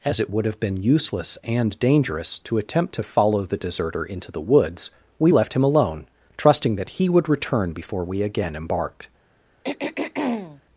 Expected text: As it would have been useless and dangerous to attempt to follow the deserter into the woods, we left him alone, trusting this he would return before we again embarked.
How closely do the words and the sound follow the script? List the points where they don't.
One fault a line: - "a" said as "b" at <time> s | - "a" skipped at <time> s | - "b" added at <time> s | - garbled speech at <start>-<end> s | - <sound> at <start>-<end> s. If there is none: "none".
- "this" said as "that" at 6.7 s
- throat clearing at 9.6-10.6 s